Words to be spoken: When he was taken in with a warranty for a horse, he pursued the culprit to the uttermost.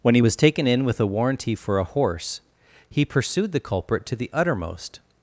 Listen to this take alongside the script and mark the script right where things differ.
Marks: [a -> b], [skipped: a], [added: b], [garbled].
When he was taken in with a warranty for a horse, he pursued the culprit to the uttermost.